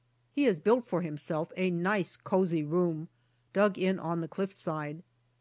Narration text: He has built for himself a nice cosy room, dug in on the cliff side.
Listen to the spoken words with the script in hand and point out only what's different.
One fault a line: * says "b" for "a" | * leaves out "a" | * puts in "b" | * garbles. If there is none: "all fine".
all fine